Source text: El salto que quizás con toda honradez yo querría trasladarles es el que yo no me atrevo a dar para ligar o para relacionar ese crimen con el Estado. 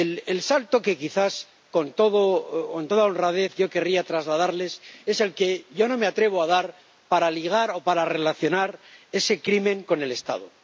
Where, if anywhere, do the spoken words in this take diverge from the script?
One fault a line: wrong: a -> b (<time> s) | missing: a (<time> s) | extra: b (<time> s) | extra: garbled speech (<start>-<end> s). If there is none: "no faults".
no faults